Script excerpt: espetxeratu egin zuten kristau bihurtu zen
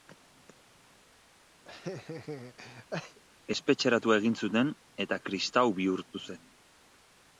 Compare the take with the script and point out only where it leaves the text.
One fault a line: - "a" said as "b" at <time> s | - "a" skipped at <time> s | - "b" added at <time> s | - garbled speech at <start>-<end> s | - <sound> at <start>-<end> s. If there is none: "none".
- laugh at 1.6-3.2 s
- "eta" added at 5.1 s